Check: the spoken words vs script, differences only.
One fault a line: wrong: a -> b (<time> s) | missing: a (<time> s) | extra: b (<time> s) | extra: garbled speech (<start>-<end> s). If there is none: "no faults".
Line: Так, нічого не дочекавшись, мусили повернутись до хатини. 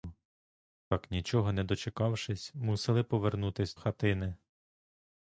missing: до (3.8 s)